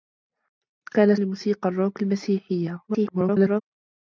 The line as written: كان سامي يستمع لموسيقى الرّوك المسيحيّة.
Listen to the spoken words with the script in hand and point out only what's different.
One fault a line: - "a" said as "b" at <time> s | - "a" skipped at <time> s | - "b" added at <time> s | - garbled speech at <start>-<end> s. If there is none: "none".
- "سامي يستمع" skipped at 1.1 s
- garbled speech at 2.9-3.6 s